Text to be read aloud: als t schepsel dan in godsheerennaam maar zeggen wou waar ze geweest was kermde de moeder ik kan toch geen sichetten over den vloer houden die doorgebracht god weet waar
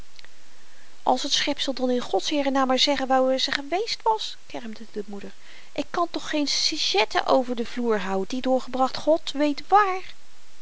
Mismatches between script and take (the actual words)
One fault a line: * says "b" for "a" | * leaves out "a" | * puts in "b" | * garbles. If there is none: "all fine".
all fine